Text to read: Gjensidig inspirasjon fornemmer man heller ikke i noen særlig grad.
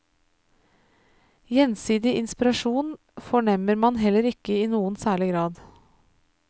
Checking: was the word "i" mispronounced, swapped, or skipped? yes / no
no